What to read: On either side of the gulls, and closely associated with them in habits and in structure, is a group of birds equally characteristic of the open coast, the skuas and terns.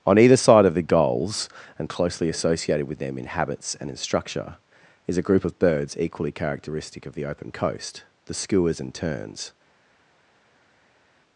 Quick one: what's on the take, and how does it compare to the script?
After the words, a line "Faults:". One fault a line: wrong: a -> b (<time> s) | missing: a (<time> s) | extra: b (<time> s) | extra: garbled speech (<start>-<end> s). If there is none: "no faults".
On either side of the gulls, and closely associated with them in habits and in structure, is a group of birds equally characteristic of the open coast, the skuas and terns.
Faults:
no faults